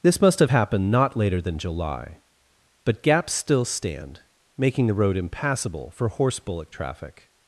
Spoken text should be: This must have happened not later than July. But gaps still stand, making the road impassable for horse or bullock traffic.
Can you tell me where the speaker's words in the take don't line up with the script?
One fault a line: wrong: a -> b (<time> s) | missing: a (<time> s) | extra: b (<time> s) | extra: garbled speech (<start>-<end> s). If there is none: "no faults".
missing: or (6.4 s)